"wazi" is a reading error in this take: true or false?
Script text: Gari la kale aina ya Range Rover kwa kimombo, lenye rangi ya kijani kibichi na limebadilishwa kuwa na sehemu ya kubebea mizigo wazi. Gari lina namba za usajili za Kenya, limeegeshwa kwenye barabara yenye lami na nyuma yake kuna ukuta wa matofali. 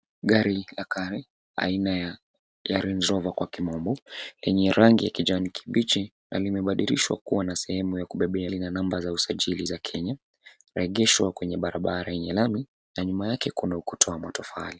true